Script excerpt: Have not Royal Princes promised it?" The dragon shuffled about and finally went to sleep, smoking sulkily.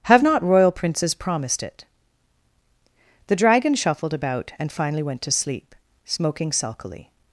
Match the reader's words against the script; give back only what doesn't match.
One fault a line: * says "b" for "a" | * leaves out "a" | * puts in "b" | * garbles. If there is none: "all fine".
all fine